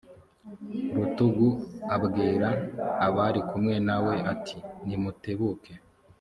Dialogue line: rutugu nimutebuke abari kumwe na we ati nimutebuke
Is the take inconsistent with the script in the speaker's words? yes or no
yes